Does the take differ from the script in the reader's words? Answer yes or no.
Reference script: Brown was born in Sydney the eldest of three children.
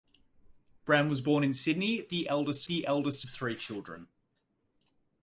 yes